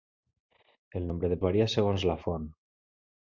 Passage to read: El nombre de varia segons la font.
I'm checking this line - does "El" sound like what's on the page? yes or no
yes